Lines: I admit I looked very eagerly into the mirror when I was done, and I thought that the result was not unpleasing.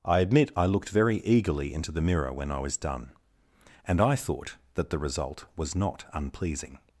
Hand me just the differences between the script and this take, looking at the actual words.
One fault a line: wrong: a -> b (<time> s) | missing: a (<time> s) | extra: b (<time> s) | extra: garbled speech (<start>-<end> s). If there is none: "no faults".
no faults